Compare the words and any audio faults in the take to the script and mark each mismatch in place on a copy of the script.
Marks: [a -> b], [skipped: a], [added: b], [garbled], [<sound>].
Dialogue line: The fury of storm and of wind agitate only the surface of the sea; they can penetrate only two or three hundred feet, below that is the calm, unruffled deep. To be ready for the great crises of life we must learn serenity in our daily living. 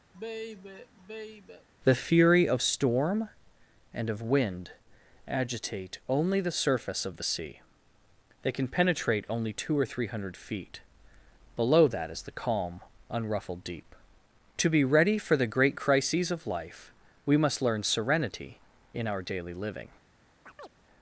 [sigh] The fury of storm and of wind agitate only the surface of the sea; they can penetrate only two or three hundred feet, below that is the calm, unruffled deep. To be ready for the great crises of life we must learn serenity in our daily living. [chirp]